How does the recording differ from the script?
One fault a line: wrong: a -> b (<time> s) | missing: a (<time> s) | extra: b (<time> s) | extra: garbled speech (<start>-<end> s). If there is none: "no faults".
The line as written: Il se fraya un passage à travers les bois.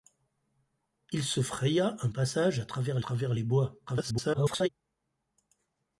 extra: travers (3.0 s)
extra: garbled speech (3.9-4.7 s)